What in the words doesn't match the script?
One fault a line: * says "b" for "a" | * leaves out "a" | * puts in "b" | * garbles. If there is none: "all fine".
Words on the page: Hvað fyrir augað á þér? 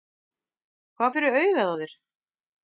all fine